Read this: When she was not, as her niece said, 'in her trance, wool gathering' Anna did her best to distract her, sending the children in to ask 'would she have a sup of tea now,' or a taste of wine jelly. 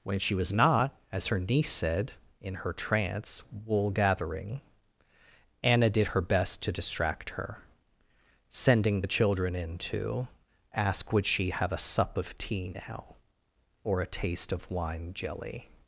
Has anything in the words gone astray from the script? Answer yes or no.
no